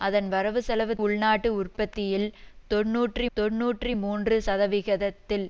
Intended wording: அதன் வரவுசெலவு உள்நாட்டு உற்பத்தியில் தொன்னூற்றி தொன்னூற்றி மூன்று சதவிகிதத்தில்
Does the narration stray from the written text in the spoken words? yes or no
no